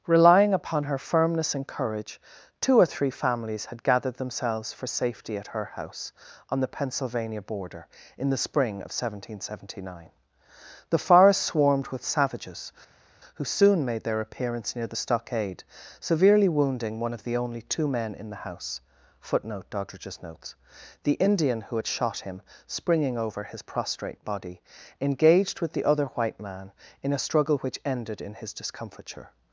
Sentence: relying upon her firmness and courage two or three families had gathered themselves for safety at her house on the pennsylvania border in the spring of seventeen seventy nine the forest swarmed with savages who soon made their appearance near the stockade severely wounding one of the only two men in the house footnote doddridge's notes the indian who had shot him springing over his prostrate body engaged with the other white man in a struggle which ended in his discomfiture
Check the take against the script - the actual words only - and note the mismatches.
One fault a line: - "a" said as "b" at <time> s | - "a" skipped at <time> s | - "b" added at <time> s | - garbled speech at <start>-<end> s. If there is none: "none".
none